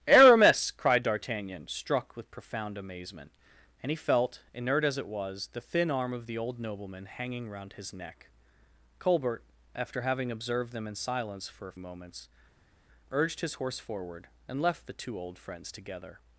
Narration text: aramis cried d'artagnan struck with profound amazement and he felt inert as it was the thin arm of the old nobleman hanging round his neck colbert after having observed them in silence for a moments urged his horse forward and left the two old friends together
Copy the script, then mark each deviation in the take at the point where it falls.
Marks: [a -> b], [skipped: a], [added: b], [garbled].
aramis cried d'artagnan struck with profound amazement and he felt inert as it was the thin arm of the old nobleman hanging round his neck colbert after having observed them in silence for a moments urged his horse forward and left the two old friends together